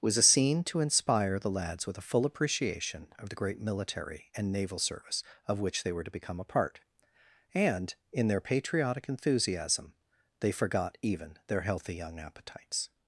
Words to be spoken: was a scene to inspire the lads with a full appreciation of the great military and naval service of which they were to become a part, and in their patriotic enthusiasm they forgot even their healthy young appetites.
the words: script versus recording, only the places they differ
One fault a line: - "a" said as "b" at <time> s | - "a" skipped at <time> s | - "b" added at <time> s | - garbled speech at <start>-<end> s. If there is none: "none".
none